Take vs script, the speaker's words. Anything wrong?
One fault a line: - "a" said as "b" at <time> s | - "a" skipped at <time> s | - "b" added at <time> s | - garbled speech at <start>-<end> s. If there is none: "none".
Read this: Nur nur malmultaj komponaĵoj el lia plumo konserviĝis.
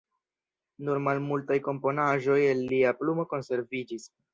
- "nur" skipped at 1.0 s